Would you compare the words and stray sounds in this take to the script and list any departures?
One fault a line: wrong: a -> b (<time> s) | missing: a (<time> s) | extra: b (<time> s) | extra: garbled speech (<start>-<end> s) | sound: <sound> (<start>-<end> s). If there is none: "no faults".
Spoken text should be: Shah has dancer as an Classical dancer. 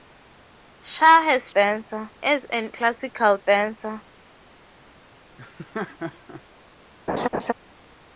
sound: laugh (5.4-6.4 s)
sound: laugh (7.1-7.5 s)